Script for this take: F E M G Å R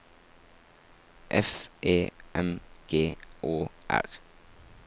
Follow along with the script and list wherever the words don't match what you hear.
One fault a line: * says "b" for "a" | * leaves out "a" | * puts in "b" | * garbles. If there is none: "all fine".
all fine